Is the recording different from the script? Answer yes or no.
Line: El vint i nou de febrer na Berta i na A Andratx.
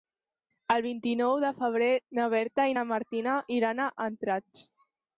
yes